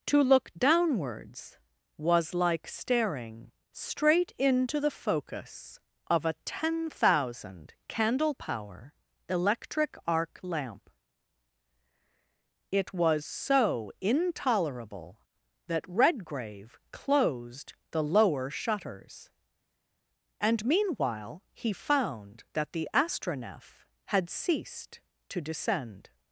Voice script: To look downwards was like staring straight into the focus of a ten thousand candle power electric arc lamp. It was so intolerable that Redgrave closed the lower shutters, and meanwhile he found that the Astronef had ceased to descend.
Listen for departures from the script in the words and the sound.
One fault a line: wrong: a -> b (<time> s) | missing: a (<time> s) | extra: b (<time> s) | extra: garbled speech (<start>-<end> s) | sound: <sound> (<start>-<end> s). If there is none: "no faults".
no faults